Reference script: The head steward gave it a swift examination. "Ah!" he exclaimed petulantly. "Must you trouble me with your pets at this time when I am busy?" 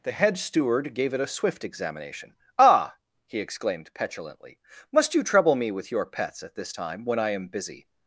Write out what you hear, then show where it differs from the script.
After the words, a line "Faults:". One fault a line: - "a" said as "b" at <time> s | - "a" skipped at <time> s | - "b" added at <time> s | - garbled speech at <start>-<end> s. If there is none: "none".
The head steward gave it a swift examination. "Ah!" he exclaimed petulantly. "Must you trouble me with your pets at this time when I am busy?"
Faults:
none